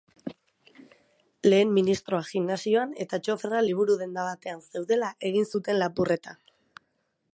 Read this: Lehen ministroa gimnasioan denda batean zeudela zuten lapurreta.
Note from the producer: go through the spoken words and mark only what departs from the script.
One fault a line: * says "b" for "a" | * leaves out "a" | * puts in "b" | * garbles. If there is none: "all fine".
* puts in "eta txoferra liburu"
* puts in "egin"